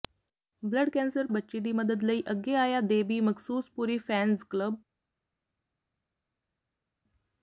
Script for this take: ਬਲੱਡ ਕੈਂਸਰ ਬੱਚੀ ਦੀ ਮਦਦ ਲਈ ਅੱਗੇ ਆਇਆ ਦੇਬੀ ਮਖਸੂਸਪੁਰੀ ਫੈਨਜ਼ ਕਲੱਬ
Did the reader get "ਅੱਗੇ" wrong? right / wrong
right